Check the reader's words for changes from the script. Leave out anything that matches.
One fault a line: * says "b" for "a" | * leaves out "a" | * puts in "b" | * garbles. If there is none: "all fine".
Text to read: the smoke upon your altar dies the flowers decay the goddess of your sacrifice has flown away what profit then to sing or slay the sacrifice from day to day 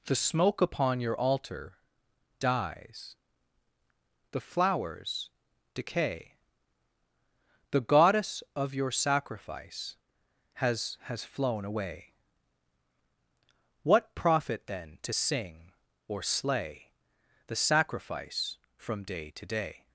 * puts in "has"